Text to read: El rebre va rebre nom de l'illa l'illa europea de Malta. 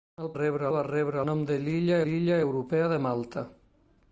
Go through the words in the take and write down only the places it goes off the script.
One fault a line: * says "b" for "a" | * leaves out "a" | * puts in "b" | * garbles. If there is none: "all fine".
all fine